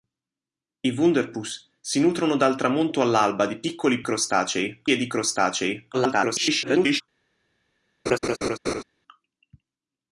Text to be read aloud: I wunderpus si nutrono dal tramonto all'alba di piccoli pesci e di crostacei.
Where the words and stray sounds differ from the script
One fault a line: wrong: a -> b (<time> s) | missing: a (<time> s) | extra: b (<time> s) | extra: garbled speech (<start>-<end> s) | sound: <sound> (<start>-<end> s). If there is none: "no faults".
wrong: pesci -> crostacei (4.0 s)
extra: garbled speech (5.9-7.0 s)
sound: laugh (8.1-8.8 s)